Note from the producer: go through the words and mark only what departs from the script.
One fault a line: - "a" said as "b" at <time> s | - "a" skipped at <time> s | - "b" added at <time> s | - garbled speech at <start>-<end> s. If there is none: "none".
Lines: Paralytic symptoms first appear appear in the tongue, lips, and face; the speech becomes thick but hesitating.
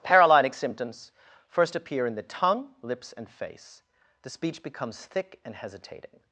- "appear" skipped at 2.1 s
- "but" said as "and" at 5.4 s